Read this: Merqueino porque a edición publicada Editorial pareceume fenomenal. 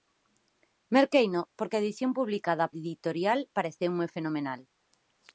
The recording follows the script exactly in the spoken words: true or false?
true